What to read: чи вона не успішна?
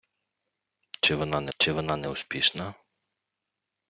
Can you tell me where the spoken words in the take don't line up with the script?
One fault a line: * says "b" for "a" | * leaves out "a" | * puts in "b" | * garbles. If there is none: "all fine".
* puts in "чи вона не"